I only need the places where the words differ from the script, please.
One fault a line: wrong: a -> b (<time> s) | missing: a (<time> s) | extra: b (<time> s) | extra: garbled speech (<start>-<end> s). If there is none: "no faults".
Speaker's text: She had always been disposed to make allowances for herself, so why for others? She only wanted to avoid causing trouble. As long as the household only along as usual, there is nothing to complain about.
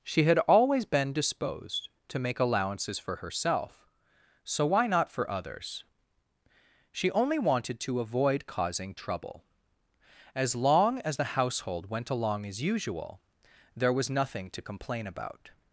extra: not (4.9 s)
wrong: only -> went (11.9 s)
wrong: is -> was (13.9 s)